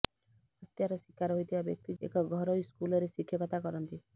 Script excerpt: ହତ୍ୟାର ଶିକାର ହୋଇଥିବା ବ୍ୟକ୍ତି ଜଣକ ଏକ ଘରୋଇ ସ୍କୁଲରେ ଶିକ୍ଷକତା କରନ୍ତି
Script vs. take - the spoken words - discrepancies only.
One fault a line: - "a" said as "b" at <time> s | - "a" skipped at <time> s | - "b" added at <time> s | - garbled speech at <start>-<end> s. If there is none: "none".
- "ଜଣକ" skipped at 2.0 s